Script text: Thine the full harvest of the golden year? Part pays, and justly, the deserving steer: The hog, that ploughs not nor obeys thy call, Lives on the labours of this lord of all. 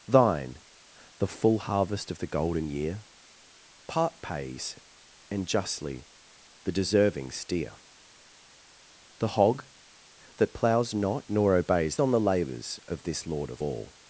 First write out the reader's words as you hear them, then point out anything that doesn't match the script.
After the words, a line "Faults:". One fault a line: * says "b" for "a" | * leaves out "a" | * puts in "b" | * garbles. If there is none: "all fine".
Thine the full harvest of the golden year? Part pays, and justly, the deserving steer: The hog, that ploughs not nor obeys on the labours of this lord of all.
Faults:
* leaves out "thy call Lives"